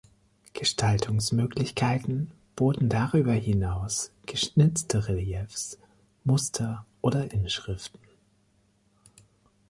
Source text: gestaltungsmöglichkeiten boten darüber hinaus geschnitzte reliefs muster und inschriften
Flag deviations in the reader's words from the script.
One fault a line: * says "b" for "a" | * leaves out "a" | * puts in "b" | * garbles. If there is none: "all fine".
* says "oder" for "und"